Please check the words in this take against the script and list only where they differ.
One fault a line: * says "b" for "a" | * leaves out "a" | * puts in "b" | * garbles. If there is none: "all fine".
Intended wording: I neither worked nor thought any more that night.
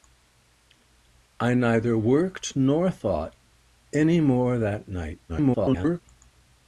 * garbles